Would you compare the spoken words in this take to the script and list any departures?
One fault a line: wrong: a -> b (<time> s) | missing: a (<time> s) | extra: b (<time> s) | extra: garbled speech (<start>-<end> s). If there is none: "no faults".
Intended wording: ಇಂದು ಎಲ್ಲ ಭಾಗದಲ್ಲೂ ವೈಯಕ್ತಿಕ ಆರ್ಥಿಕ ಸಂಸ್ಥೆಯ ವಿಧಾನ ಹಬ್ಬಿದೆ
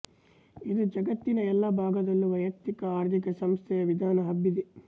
extra: ಜಗತ್ತಿನ (0.9 s)